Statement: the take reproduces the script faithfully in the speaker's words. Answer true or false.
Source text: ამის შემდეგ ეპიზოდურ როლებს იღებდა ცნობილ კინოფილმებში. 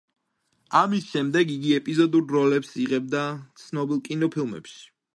false